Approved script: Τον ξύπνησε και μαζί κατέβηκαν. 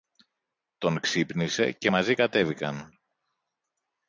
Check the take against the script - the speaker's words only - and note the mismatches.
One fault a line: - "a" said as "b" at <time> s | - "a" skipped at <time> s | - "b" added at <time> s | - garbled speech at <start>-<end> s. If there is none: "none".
none